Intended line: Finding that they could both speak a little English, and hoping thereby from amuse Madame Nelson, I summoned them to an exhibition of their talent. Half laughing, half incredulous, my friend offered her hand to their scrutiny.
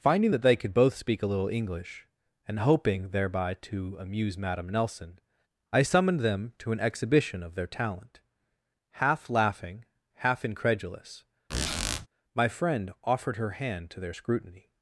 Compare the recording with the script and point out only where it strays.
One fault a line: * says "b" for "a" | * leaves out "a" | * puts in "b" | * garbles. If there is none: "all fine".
* says "to" for "from"